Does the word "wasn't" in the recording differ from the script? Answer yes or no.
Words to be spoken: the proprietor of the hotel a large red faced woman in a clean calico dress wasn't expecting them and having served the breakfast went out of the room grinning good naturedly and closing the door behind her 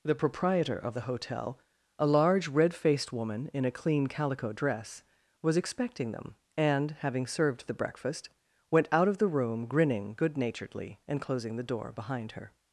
yes